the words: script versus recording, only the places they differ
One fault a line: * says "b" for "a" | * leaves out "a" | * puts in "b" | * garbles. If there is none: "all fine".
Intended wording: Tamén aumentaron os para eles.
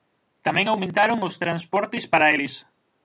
* puts in "transportes"